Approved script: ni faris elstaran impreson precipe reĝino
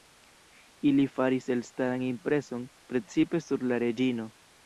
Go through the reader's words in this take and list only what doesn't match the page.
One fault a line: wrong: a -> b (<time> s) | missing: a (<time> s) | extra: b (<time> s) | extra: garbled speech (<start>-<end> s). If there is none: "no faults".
wrong: ni -> ili (0.9 s)
extra: sur la (3.5 s)